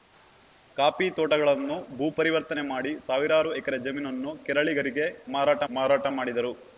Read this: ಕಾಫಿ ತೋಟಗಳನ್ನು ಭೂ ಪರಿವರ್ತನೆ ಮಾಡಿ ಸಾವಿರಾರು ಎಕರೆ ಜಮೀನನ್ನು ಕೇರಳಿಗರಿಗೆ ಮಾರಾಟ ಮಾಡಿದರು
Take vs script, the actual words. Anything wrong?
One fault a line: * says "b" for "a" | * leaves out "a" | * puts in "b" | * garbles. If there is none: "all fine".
* puts in "ಮಾರಾಟ"